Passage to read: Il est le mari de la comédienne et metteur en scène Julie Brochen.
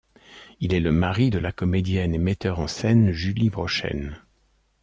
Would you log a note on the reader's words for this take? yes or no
no